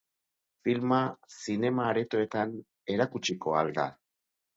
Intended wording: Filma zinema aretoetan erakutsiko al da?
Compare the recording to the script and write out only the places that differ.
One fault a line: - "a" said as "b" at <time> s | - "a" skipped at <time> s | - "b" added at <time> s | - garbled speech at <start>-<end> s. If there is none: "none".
none